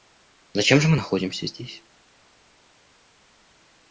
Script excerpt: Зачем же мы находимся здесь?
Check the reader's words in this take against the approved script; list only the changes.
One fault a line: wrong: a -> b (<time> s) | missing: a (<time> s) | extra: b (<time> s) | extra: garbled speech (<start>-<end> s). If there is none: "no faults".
no faults